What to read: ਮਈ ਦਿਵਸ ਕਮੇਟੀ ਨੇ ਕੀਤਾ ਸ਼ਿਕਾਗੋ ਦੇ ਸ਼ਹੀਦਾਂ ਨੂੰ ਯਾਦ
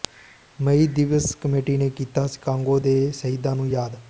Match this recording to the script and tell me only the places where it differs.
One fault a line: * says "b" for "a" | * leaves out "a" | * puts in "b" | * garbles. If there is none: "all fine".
all fine